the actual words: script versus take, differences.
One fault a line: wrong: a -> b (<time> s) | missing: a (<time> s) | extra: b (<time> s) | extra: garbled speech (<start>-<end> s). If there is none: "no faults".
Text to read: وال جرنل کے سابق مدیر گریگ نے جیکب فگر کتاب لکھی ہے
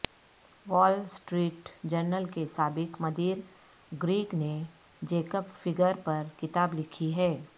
extra: سٹریٹ (1.1 s)
extra: پر (6.0 s)